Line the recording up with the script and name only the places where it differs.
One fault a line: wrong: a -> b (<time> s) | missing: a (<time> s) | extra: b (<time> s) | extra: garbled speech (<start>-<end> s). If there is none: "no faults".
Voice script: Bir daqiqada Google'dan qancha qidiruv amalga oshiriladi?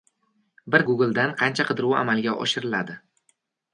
missing: daqiqada (0.8 s)